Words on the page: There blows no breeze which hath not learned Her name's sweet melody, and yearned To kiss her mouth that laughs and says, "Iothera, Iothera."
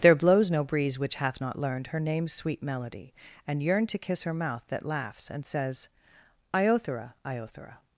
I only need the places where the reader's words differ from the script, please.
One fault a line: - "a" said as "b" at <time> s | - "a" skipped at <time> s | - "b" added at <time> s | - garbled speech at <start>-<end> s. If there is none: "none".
none